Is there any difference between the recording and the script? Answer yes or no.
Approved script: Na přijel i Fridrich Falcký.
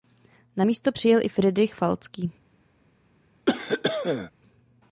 yes